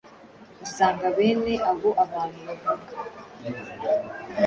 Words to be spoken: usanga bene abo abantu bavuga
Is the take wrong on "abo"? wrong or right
right